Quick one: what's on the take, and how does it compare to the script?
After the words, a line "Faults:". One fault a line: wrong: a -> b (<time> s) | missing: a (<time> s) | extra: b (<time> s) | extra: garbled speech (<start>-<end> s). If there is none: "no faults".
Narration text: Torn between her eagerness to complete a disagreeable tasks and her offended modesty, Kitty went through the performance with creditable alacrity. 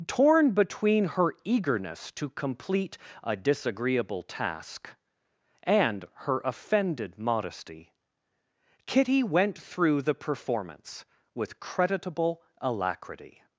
Torn between her eagerness to complete a disagreeable task and her offended modesty, Kitty went through the performance with creditable alacrity.
Faults:
wrong: tasks -> task (4.2 s)